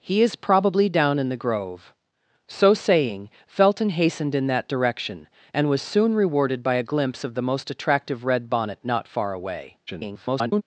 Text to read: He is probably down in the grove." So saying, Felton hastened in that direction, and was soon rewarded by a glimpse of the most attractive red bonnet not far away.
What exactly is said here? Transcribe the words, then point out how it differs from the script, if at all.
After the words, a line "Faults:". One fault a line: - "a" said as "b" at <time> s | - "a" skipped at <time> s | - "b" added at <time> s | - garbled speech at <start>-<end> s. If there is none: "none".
He is probably down in the grove." So saying, Felton hastened in that direction, and was soon rewarded by a glimpse of the most attractive red bonnet not far away. [garbled]
Faults:
- garbled speech at 9.9-10.6 s